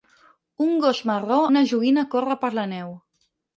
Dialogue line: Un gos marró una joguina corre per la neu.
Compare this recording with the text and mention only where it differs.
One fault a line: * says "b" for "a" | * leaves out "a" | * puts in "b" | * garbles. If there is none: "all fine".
all fine